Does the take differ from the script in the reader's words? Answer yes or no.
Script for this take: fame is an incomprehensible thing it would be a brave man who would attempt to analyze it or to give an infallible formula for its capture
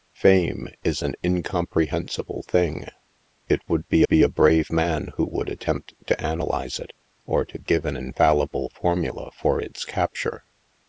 yes